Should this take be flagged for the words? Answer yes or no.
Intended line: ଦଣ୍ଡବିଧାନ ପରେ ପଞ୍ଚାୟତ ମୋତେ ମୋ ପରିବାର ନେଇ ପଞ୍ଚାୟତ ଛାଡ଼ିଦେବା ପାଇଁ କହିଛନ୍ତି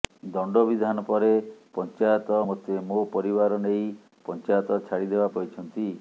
yes